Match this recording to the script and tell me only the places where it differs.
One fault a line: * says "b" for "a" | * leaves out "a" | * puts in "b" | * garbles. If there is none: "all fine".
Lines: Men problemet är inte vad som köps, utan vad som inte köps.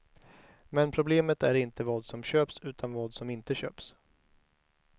all fine